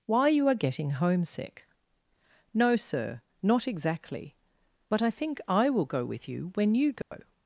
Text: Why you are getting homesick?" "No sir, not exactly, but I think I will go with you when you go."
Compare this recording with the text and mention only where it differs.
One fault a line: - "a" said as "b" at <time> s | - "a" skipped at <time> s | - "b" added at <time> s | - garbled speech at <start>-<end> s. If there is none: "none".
none